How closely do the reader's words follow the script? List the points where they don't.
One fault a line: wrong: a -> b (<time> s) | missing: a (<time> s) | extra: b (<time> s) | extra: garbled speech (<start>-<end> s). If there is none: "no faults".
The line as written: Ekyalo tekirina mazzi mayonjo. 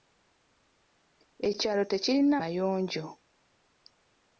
missing: mazzi (2.4 s)